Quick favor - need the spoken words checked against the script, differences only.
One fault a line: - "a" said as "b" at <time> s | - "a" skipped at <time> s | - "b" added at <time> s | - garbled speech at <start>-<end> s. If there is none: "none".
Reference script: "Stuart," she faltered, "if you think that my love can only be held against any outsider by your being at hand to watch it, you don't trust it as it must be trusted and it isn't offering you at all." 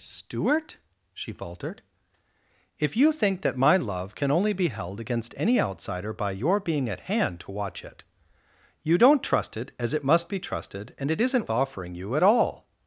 none